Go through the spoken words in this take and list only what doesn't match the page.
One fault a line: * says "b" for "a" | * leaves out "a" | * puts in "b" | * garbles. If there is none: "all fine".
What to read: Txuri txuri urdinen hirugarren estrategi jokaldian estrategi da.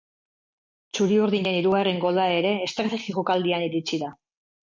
* leaves out "txuri"
* puts in "gola ere"
* says "iritsi" for "estrategi"